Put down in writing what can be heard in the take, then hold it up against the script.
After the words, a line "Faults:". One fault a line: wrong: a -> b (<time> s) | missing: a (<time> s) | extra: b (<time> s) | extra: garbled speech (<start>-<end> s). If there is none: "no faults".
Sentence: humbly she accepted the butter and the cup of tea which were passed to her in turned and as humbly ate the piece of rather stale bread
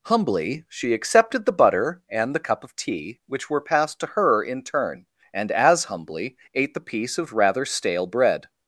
humbly she accepted the butter and the cup of tea which were passed to her in turn and as humbly ate the piece of rather stale bread
Faults:
wrong: turned -> turn (4.6 s)